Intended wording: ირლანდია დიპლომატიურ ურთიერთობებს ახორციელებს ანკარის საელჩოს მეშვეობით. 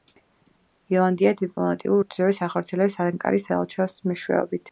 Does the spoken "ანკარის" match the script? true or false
true